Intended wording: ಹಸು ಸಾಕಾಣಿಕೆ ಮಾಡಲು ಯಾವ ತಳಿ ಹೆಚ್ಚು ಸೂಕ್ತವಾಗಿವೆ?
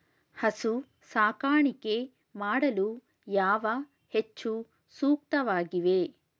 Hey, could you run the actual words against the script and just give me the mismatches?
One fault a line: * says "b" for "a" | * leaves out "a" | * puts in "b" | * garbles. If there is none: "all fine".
* leaves out "ತಳಿ"